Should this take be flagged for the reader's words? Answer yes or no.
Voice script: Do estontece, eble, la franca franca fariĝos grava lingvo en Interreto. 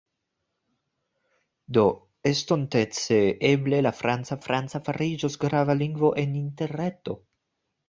no